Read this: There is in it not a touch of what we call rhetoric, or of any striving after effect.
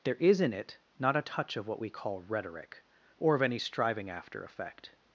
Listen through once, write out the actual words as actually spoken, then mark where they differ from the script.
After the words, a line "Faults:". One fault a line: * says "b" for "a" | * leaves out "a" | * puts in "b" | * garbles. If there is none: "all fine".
There is in it not a touch of what we call rhetoric, or of any striving after effect.
Faults:
all fine